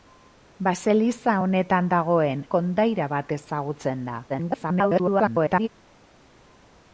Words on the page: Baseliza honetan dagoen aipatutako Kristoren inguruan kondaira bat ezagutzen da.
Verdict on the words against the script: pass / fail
fail